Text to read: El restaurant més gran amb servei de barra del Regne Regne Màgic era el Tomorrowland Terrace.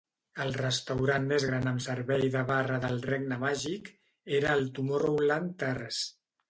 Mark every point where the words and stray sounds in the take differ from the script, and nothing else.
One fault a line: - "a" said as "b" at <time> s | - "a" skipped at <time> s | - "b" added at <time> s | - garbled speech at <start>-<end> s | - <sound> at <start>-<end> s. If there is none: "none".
- "Regne" skipped at 3.4 s